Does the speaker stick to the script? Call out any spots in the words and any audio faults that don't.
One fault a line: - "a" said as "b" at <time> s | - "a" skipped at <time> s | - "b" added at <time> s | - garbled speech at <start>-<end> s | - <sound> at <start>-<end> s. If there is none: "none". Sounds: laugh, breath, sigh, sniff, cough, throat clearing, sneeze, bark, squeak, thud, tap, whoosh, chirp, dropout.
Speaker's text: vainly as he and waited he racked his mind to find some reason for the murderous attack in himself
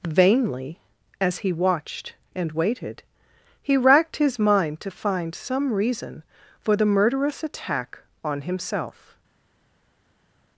- "watched" added at 1.5 s
- "in" said as "on" at 8.2 s